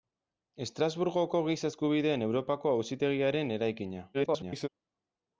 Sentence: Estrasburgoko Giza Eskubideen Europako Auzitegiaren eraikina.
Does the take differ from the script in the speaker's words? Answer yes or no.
yes